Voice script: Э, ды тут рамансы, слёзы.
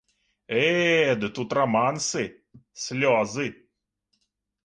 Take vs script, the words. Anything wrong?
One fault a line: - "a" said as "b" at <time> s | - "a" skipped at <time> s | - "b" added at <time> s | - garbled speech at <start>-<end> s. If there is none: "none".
none